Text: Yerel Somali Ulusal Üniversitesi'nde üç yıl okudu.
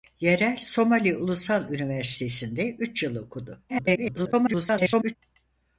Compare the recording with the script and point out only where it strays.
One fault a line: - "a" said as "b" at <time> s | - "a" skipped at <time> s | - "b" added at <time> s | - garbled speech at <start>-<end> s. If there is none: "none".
- garbled speech at 3.7-5.2 s